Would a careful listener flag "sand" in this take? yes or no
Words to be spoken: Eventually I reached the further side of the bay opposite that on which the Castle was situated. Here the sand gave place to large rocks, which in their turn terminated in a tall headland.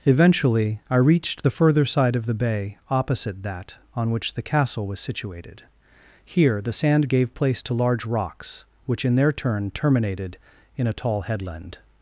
no